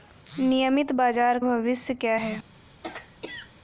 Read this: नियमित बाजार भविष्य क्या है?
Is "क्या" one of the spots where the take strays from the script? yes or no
no